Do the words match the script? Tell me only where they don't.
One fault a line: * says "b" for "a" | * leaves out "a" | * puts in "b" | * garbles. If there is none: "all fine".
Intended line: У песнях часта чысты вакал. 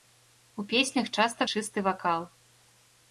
all fine